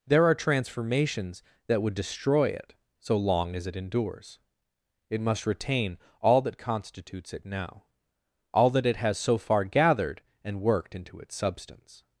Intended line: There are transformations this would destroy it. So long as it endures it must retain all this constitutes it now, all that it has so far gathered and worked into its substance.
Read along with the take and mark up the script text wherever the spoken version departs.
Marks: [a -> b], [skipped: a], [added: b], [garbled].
There are transformations [this -> that] would destroy it. So long as it endures it must retain all [this -> that] constitutes it now, all that it has so far gathered and worked into its substance.